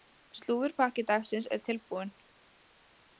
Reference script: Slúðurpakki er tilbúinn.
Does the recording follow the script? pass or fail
fail